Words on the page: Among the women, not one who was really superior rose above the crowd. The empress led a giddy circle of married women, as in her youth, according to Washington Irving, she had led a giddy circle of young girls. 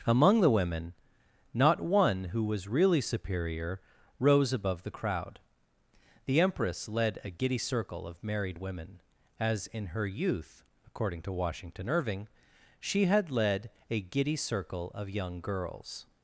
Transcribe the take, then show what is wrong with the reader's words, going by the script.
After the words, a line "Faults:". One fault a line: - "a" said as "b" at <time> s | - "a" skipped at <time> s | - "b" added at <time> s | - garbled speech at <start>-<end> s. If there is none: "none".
Among the women, not one who was really superior rose above the crowd. The empress led a giddy circle of married women, as in her youth, according to Washington Irving, she had led a giddy circle of young girls.
Faults:
none